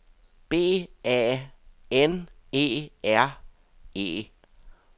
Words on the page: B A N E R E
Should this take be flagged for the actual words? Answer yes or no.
no